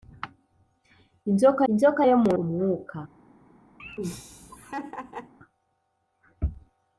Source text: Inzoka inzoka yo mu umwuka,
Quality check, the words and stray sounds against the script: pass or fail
fail